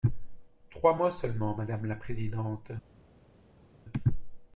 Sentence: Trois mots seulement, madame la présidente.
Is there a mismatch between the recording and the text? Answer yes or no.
no